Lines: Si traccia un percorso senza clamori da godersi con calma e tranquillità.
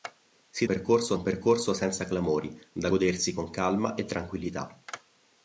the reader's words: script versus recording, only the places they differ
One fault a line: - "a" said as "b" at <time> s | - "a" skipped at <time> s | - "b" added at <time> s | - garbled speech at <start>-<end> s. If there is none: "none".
- "traccia" said as "percorso" at 0.7 s